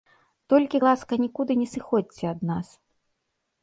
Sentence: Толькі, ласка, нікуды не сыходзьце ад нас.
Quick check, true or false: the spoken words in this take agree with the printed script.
true